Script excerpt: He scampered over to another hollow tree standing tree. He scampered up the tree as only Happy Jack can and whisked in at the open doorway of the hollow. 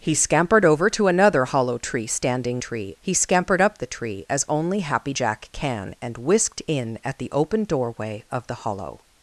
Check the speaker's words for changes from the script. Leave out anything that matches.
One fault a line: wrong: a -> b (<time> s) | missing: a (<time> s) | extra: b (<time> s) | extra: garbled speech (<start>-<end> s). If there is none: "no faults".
no faults